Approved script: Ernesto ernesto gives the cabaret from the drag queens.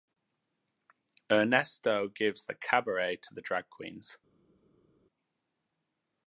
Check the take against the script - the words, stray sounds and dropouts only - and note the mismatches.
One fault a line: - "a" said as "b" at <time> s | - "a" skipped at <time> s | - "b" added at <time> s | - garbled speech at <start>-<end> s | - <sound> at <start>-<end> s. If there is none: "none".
- "ernesto" skipped at 2.1 s
- "from" said as "to" at 3.2 s